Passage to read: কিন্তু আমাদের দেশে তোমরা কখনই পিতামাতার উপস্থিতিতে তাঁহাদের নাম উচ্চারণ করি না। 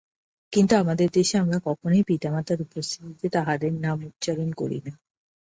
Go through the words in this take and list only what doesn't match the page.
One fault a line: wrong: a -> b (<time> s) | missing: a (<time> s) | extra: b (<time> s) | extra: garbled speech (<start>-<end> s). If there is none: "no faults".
wrong: তোমরা -> আমরা (1.4 s)